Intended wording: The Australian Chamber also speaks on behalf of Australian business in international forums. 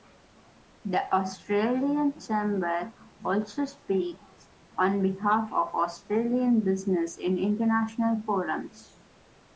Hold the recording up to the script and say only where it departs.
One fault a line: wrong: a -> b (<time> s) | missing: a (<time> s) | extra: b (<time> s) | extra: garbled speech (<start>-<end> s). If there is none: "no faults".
no faults